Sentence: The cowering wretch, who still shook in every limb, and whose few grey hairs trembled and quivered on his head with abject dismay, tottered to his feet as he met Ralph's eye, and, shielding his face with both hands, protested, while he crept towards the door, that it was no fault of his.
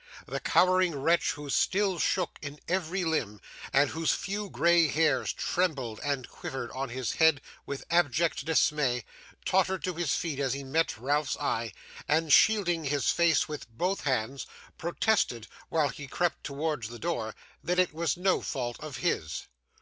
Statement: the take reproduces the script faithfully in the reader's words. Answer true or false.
true